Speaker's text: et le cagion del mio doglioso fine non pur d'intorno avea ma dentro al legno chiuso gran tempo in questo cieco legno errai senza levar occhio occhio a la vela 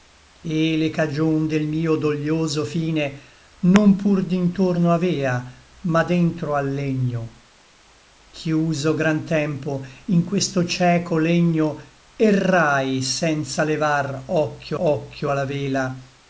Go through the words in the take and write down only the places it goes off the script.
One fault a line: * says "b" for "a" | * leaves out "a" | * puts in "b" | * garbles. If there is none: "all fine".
all fine